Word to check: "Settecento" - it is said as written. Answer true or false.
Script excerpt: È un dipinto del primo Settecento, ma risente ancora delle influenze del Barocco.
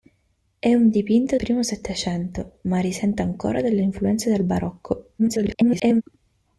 true